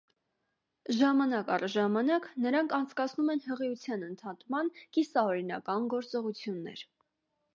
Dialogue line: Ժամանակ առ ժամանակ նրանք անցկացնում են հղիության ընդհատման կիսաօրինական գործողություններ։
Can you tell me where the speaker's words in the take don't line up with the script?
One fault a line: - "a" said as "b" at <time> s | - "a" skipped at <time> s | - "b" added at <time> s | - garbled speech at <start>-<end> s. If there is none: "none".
none